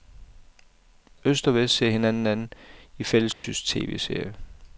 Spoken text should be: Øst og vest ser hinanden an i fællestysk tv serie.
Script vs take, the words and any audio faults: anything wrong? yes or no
yes